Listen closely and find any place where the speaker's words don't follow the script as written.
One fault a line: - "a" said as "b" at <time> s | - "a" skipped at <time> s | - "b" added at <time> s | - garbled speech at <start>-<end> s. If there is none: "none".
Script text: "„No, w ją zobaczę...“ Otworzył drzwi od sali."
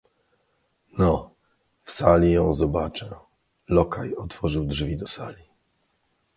- "sali" added at 1.9 s
- "Lokaj" added at 3.7 s
- "od" said as "do" at 5.0 s